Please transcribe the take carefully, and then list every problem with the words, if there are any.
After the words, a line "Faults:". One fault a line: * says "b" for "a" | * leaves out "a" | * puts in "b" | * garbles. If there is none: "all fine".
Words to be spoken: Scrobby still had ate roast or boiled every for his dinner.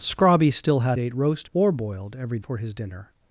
Scrobby still had ate roast or boiled every for his dinner.
Faults:
all fine